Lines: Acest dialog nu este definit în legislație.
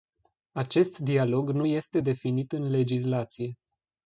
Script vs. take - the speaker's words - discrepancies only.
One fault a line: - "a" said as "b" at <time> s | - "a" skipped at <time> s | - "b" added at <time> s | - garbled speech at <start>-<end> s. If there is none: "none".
none